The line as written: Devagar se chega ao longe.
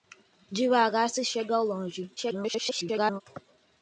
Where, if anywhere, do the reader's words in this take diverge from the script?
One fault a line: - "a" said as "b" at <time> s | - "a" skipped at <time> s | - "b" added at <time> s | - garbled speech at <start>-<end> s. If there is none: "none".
- garbled speech at 2.2-3.2 s